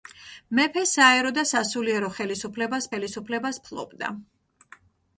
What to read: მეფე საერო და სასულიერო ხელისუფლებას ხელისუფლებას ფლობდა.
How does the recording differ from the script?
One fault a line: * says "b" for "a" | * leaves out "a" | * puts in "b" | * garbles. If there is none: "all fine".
all fine